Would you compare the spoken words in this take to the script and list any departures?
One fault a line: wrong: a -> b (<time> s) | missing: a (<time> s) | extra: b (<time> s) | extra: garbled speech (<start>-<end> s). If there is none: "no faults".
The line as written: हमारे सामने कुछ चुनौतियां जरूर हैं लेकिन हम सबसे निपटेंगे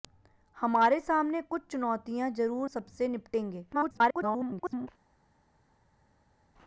missing: हैं लेकिन हम (2.7 s)
extra: garbled speech (3.7-4.9 s)